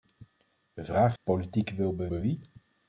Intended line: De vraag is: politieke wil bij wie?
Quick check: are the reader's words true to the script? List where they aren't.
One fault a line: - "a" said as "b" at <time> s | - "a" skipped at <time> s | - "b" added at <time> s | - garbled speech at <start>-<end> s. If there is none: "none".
- "is" skipped at 1.2 s
- "bij" added at 2.1 s